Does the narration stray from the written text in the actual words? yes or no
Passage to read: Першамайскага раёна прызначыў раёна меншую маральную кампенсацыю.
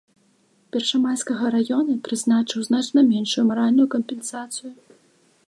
yes